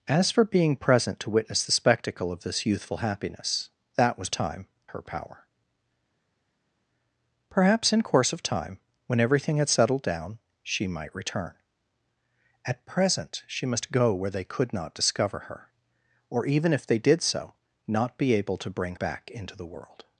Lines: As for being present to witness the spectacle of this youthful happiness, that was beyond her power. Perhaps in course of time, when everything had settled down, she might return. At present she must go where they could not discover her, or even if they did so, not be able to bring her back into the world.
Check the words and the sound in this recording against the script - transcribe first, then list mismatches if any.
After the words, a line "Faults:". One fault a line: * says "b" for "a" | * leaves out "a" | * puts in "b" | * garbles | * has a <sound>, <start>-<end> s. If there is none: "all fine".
As for being present to witness the spectacle of this youthful happiness, that was time her power. Perhaps in course of time, when everything had settled down, she might return. At present she must go where they could not discover her, or even if they did so, not be able to bring back into the world.
Faults:
* says "time" for "beyond"
* leaves out "her"